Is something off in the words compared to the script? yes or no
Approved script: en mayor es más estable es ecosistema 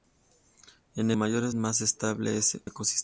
no